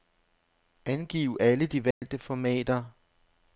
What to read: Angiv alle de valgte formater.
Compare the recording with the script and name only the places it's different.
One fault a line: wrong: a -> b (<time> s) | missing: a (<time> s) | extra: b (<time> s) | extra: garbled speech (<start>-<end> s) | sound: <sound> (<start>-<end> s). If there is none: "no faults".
sound: dropout (1.9-2.0 s)